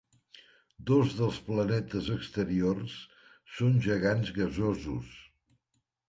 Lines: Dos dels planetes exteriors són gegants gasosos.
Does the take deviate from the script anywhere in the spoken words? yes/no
no